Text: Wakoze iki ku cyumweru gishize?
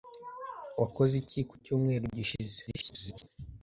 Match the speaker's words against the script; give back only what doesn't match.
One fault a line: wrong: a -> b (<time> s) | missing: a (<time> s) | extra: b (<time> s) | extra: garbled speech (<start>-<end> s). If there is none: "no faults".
extra: garbled speech (2.7-3.3 s)